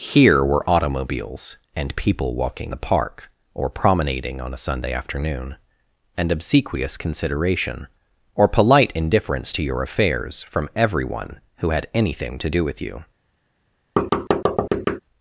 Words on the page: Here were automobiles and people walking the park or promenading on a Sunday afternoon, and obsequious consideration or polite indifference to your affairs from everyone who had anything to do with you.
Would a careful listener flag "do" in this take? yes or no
no